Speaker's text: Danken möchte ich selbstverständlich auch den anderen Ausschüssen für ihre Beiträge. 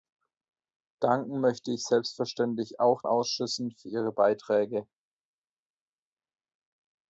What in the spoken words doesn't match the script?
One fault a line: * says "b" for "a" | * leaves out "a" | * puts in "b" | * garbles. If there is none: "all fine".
* leaves out "den anderen"